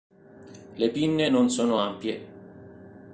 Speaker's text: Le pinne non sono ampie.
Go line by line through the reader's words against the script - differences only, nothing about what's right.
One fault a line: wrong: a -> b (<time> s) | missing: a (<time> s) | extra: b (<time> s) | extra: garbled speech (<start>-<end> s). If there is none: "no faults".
no faults